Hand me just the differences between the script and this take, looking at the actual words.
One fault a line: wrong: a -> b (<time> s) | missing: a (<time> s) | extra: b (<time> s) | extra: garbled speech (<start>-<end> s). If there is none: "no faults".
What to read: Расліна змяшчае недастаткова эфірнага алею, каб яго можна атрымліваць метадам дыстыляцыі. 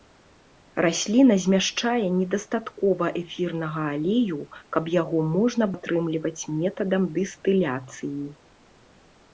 no faults